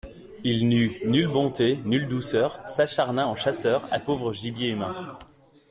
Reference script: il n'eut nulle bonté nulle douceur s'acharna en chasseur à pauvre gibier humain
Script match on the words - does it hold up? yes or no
yes